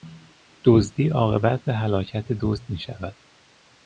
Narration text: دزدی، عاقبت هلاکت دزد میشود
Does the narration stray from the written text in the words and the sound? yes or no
no